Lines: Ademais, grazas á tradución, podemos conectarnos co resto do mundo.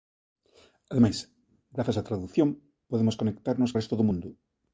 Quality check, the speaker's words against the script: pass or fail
fail